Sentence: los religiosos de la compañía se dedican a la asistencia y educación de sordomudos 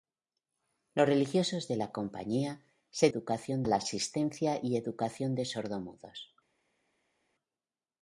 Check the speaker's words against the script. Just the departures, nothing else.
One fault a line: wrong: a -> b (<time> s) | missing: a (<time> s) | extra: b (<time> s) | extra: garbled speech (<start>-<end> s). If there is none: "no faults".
wrong: dedican -> educación (3.1 s)